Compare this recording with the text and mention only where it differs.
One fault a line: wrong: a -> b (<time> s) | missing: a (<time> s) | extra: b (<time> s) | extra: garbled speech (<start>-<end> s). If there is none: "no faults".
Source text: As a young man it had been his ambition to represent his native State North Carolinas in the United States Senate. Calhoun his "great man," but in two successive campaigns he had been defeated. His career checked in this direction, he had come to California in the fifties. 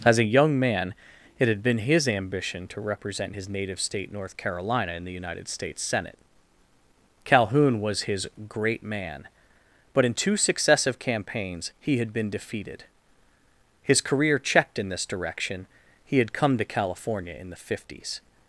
wrong: Carolinas -> Carolina (4.4 s)
extra: was (7.8 s)